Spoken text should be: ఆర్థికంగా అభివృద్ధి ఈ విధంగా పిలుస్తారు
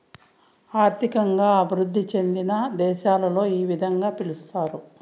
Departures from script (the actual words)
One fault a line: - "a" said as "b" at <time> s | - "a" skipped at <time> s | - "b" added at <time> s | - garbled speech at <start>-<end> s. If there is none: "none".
- "చెందిన దేశాలలో" added at 2.1 s